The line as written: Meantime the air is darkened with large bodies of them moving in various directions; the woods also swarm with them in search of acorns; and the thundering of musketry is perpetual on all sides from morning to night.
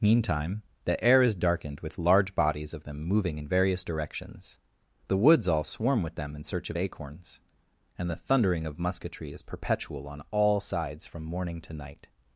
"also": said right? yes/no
no